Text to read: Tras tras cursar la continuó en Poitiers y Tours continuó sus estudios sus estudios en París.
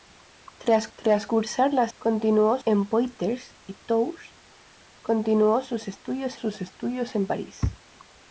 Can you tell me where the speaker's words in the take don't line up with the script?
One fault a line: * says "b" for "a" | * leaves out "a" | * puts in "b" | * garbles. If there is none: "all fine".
all fine